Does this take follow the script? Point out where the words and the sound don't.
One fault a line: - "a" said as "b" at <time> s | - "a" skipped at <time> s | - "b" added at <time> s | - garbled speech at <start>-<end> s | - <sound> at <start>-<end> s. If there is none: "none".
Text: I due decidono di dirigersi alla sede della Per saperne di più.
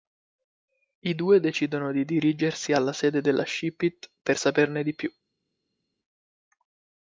- "Ship it" added at 3.5 s